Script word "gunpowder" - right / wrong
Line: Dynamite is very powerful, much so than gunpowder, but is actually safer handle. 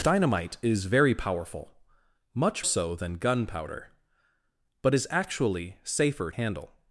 right